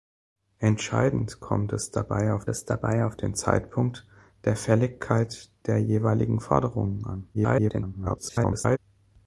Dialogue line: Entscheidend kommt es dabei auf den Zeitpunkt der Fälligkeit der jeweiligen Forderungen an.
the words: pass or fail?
fail